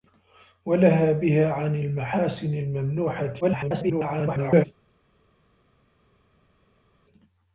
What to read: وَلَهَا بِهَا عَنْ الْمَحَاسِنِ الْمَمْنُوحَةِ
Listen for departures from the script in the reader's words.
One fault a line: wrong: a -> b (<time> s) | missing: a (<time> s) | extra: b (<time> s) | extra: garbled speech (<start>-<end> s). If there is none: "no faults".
extra: garbled speech (3.4-4.6 s)